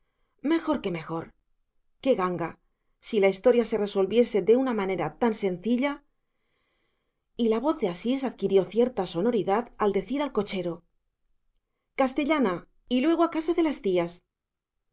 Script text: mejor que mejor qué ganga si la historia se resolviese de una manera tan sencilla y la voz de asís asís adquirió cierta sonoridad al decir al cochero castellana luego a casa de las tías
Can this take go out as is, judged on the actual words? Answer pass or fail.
fail